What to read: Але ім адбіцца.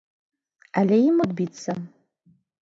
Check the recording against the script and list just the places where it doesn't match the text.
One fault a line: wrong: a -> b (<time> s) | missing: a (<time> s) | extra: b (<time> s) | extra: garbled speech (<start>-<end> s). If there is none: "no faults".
no faults